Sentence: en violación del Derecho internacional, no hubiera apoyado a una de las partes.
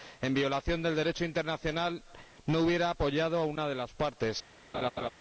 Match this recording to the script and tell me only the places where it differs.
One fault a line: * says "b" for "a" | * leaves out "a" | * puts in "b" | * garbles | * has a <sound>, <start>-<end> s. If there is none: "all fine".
* has a laugh, 4.7-5.1 s